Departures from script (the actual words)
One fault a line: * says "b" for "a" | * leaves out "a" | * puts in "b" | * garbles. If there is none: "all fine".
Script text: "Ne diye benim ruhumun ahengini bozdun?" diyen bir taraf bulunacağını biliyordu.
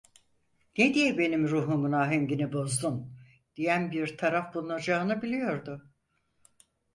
all fine